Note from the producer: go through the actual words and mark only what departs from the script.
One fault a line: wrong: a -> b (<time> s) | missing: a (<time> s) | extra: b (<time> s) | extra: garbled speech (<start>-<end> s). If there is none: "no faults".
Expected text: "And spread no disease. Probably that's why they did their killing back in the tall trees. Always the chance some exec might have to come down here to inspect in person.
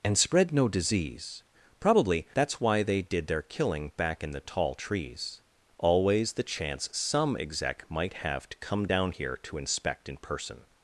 no faults